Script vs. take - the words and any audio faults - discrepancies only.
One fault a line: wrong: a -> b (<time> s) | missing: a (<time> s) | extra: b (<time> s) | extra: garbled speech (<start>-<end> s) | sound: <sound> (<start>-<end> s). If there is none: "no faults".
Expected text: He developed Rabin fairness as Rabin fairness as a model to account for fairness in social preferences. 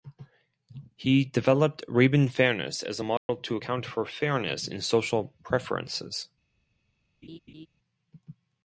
missing: Rabin fairness as (3.0 s)
sound: dropout (3.2-3.3 s)
sound: laugh (7.2-7.7 s)